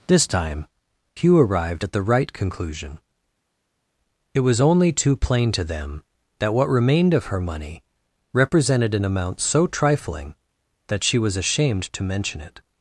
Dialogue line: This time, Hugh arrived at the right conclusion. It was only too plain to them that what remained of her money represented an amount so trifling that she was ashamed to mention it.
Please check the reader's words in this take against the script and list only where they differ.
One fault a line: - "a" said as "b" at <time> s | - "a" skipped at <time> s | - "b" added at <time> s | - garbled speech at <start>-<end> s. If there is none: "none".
none